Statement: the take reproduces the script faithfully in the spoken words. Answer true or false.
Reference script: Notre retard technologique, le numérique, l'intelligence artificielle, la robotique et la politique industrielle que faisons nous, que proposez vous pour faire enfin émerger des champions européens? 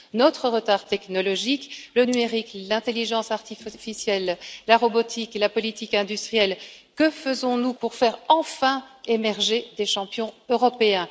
false